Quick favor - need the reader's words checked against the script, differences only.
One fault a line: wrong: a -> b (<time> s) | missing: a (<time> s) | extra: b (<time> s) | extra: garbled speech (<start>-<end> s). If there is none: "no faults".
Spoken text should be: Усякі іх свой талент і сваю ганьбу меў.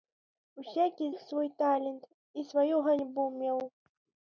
no faults